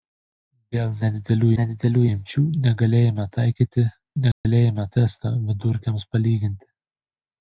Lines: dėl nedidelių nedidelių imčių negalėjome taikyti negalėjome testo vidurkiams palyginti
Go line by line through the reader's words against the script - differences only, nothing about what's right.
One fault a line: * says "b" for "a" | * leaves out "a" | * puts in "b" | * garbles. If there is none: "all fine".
all fine